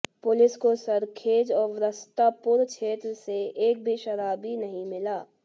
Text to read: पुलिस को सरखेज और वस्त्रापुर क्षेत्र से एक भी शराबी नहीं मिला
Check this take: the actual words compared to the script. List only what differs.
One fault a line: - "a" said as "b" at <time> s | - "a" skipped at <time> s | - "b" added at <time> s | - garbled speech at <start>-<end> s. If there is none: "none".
none